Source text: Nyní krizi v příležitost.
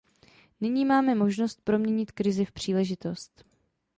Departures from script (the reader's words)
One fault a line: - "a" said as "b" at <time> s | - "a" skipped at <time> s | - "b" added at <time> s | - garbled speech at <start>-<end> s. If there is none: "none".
- "máme možnost proměnit" added at 0.8 s